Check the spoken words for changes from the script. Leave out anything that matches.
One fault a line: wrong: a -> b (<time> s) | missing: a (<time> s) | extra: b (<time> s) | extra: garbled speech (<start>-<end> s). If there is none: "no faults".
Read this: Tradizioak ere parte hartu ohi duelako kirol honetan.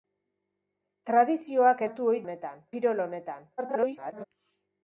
missing: ere parte (1.8 s)
wrong: duelako -> honetan (2.2 s)
extra: garbled speech (3.6-4.2 s)